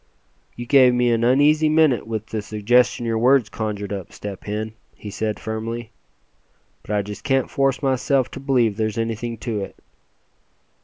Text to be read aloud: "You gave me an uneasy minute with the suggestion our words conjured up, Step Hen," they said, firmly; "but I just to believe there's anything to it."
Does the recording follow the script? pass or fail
fail